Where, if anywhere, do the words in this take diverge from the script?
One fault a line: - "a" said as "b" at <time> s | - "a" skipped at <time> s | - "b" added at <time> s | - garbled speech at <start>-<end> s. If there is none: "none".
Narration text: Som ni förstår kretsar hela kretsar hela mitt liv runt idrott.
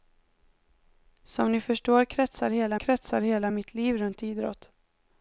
none